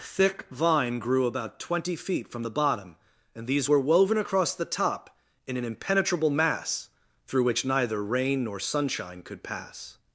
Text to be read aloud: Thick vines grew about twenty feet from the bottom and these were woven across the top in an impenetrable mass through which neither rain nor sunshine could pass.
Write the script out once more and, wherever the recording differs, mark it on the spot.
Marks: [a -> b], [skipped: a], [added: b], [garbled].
Thick [vines -> vine] grew about twenty feet from the bottom and these were woven across the top in an impenetrable mass through which neither rain nor sunshine could pass.